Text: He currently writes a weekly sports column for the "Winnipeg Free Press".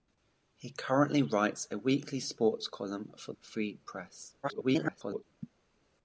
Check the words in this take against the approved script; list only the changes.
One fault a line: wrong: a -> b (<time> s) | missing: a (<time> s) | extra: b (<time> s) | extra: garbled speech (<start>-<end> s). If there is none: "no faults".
missing: the Winnipeg (3.3 s)
extra: garbled speech (4.4-5.2 s)